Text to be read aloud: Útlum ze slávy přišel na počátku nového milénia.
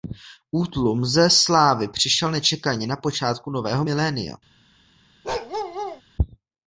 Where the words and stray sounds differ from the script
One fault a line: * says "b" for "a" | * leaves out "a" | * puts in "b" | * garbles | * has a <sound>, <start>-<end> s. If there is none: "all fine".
* puts in "nečekaně"
* has a bark, 5.2-6.0 s